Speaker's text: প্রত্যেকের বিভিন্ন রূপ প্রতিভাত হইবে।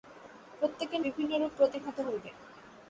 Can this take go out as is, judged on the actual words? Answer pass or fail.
pass